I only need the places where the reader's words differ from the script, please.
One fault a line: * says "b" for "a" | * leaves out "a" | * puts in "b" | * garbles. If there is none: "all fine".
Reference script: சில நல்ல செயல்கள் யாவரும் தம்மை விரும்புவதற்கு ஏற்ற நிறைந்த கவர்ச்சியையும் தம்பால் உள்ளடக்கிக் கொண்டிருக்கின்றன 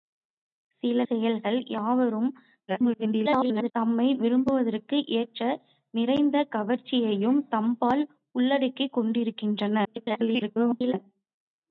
* leaves out "நல்ல"
* garbles
* garbles